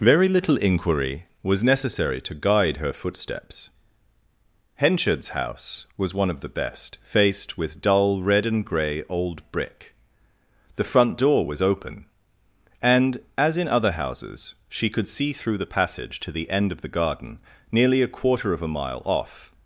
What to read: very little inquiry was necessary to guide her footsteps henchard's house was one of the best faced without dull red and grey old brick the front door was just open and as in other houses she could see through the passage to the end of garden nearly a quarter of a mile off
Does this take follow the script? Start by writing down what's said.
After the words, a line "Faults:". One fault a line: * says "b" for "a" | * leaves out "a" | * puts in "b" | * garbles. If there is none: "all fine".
very little inquiry was necessary to guide her footsteps henchard's house was one of the best faced with dull red and grey old brick the front door was open and as in other houses she could see through the passage to the end of the garden nearly a quarter of a mile off
Faults:
* says "with" for "without"
* leaves out "just"
* puts in "the"